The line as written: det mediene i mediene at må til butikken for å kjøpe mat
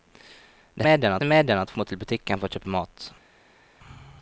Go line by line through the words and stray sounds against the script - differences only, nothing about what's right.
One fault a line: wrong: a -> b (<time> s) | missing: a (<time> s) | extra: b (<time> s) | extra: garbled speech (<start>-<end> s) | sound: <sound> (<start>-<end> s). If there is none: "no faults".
no faults